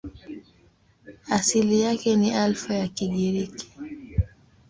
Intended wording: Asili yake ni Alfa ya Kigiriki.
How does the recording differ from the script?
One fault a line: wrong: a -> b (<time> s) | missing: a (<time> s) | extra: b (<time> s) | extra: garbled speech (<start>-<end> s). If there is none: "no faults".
no faults